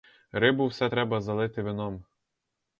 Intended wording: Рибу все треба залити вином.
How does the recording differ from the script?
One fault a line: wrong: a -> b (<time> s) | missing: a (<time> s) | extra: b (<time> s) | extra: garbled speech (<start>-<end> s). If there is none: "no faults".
no faults